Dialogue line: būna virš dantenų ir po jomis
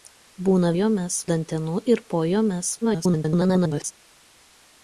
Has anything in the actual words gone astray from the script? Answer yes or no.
yes